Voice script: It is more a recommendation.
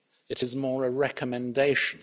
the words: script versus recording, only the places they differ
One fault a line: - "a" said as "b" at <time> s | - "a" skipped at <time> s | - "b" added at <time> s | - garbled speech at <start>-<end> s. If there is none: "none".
none